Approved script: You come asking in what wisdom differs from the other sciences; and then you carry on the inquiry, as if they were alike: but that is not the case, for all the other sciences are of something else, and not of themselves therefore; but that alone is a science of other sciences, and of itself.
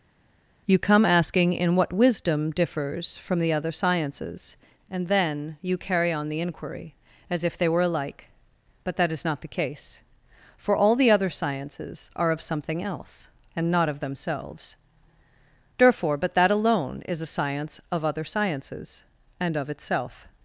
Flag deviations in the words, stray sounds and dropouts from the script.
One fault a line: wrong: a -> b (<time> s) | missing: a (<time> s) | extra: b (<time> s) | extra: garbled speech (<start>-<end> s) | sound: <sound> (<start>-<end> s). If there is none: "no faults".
no faults